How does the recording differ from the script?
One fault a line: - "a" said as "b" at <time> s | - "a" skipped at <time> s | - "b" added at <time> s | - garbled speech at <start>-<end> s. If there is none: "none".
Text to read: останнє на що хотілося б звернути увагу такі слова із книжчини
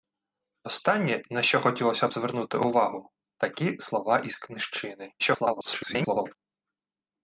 - garbled speech at 5.2-6.3 s